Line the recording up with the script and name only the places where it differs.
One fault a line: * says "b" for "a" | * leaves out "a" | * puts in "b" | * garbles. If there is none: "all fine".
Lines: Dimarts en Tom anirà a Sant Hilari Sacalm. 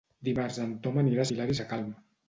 * leaves out "Sant"